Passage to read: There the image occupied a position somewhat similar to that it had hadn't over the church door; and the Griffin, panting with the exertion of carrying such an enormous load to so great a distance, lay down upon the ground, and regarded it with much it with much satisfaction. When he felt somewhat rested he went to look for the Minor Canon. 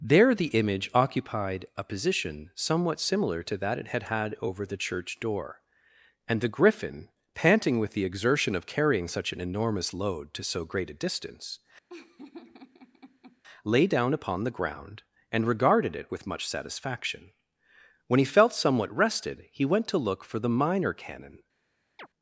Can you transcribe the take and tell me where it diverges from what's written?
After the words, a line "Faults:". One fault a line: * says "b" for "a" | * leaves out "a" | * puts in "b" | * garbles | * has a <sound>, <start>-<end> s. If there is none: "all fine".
There the image occupied a position somewhat similar to that it had had over the church door; and the Griffin, panting with the exertion of carrying such an enormous load to so great a distance, lay down upon the ground, and regarded it with much satisfaction. When he felt somewhat rested he went to look for the Minor Canon.
Faults:
* says "had" for "hadn't"
* has a laugh, 11.9-13.4 s
* leaves out "it with much"
* has a chirp, 22.0-22.1 s